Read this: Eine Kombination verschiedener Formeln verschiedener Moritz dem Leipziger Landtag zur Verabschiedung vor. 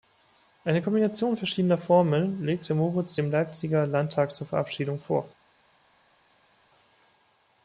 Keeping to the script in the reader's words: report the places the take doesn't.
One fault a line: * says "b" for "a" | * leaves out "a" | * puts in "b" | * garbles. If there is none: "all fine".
* says "legte" for "verschiedener"